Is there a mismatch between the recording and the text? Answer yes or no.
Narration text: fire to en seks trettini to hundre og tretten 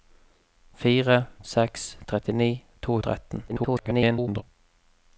yes